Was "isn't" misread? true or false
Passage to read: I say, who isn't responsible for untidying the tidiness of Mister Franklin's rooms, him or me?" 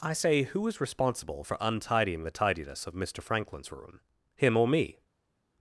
true